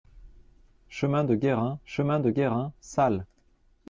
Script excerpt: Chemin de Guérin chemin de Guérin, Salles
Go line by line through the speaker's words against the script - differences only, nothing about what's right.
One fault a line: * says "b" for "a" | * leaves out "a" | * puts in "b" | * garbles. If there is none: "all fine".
all fine